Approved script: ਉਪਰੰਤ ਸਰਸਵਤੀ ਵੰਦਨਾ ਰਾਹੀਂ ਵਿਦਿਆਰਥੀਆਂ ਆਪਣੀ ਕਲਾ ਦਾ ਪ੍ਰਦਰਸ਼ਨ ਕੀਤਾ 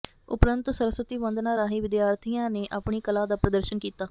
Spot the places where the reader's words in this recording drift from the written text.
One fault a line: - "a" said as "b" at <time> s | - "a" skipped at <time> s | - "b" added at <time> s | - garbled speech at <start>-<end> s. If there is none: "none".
- "ਨੇ" added at 2.5 s